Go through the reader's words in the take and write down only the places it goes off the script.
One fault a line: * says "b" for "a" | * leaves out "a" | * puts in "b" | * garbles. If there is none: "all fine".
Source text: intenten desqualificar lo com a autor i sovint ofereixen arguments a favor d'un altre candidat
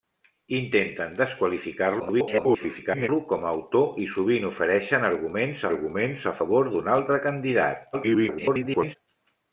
* garbles
* puts in "arguments"
* garbles